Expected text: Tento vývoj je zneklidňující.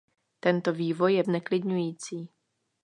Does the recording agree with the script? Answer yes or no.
yes